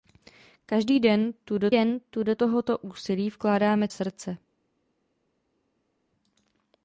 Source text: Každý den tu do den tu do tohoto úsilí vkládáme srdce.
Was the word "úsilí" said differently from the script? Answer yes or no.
no